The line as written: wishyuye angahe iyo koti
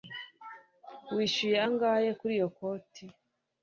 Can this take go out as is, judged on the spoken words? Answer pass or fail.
fail